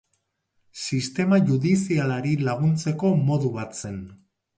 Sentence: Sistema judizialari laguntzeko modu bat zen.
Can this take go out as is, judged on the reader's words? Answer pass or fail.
pass